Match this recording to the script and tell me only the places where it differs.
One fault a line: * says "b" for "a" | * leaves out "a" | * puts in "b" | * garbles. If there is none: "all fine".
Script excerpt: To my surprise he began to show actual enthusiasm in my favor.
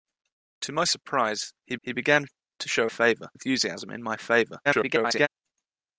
* puts in "he"
* says "favor" for "actual"
* garbles